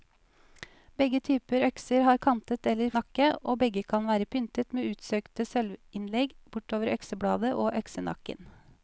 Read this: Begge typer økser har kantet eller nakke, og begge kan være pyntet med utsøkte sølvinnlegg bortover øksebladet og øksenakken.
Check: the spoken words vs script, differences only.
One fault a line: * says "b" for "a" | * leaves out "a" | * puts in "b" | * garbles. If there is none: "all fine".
all fine